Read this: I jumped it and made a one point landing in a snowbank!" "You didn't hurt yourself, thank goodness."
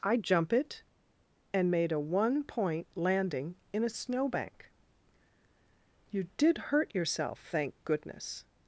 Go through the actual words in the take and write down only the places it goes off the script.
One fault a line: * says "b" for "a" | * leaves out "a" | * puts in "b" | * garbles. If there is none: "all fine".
* says "jump" for "jumped"
* says "did" for "didn't"